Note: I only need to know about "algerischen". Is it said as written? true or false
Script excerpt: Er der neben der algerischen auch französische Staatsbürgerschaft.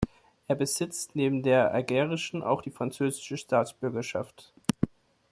true